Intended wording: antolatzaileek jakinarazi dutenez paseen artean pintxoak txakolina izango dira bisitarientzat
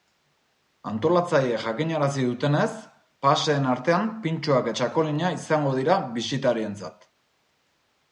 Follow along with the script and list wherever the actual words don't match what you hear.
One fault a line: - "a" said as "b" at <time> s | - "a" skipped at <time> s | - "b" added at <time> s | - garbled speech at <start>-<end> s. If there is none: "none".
none